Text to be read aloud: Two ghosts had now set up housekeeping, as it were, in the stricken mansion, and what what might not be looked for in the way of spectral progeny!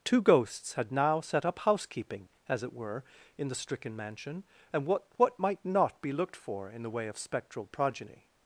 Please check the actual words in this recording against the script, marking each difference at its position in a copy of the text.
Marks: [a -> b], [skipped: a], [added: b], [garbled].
Two ghosts had now set up housekeeping, as it were, in the stricken mansion, and what what might not be looked for in the way of spectral progeny!